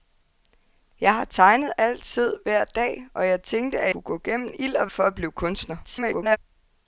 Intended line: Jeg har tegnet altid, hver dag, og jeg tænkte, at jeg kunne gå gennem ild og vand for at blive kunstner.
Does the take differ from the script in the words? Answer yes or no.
yes